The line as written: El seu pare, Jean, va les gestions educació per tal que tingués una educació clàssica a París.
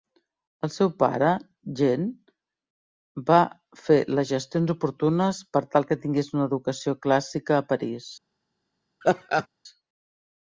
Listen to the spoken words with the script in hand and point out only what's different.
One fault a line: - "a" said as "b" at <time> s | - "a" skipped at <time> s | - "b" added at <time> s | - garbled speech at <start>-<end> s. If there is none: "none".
- "fer" added at 3.8 s
- "educació" said as "oportunes" at 4.8 s